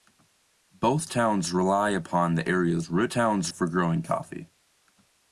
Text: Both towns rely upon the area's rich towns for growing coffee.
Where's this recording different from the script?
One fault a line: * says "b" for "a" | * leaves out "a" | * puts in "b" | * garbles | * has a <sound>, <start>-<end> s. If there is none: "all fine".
all fine